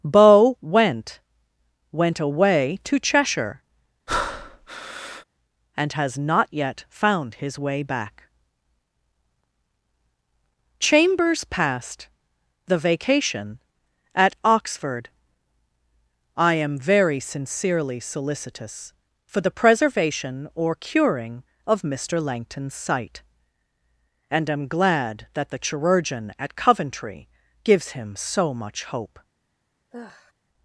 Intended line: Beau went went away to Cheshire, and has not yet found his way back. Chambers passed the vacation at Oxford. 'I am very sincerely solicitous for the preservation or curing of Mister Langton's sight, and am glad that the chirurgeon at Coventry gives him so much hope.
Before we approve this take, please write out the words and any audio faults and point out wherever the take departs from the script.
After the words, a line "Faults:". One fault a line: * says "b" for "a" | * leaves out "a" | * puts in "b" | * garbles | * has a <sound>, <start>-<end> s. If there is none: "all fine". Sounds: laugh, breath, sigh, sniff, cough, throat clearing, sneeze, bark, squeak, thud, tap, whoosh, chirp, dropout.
Beau went went away to Cheshire, and has not yet found his way back. Chambers passed the vacation at Oxford. 'I am very sincerely solicitous for the preservation or curing of Mister Langton's sight, and am glad that the chirurgeon at Coventry gives him so much hope.
Faults:
* has a breath, 4.1-5.2 s
* has a sigh, 29.9-30.3 s